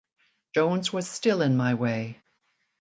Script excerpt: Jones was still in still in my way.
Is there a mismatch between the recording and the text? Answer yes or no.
yes